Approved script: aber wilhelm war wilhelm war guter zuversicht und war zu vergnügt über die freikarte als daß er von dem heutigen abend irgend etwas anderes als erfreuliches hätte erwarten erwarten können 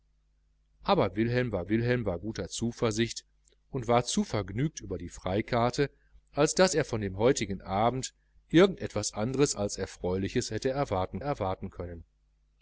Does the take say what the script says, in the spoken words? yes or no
yes